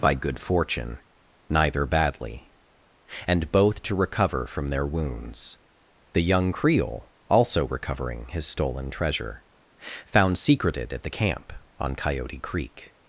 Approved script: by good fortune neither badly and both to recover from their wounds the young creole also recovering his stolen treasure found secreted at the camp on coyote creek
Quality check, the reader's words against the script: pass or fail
pass